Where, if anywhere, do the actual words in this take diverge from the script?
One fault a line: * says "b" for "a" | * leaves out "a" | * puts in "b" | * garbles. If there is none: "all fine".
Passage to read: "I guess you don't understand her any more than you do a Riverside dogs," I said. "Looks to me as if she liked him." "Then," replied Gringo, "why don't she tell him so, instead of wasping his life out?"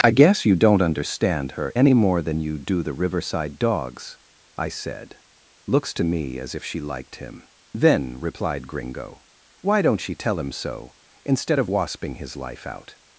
* says "the" for "a"